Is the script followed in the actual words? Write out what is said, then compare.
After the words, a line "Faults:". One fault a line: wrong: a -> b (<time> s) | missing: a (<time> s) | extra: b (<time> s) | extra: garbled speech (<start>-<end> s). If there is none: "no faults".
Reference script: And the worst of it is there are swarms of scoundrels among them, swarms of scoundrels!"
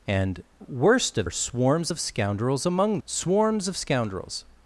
And worst of are swarms of scoundrels among swarms of scoundrels!"
Faults:
missing: the (0.4 s)
missing: it is there (1.3 s)
missing: them (3.0 s)